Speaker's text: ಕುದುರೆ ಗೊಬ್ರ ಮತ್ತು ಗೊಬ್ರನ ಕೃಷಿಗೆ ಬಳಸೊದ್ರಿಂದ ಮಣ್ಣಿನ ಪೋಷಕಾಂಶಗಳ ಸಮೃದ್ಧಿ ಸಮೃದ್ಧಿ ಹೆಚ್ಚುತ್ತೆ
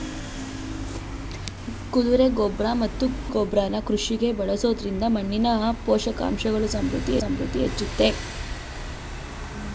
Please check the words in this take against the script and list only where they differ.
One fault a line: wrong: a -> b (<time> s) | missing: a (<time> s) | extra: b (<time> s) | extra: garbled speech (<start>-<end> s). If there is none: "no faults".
no faults